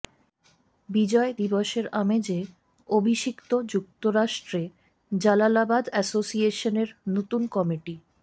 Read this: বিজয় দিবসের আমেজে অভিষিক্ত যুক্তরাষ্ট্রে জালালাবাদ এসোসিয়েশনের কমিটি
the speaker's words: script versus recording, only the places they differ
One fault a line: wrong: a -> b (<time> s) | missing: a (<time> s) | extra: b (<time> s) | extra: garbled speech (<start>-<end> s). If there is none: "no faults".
extra: নতুন (7.1 s)